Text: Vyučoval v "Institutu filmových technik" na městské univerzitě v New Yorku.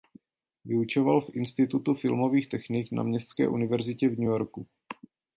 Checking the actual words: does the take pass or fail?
pass